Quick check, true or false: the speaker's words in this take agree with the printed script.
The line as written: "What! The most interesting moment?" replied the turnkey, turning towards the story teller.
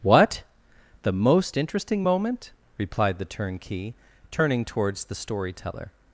true